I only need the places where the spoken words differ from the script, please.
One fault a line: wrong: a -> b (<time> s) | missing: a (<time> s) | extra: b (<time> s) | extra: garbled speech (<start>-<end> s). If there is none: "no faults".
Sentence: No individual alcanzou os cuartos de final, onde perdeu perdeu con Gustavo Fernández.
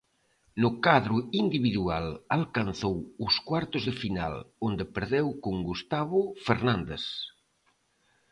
extra: cadro (0.8 s)
missing: perdeu (5.3 s)